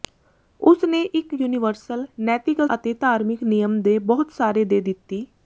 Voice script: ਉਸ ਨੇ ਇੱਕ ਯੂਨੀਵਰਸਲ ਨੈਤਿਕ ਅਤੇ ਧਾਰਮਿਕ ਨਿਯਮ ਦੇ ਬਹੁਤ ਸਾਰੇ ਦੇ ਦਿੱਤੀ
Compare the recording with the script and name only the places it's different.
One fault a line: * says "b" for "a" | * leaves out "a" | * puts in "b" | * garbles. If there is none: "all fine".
all fine